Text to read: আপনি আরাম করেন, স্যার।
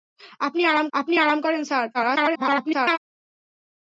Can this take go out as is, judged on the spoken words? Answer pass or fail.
fail